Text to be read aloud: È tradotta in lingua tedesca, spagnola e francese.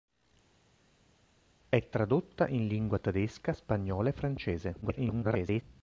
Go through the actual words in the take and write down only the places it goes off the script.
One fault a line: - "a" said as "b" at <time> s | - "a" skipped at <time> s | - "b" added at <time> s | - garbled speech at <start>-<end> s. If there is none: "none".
- garbled speech at 4.8-5.6 s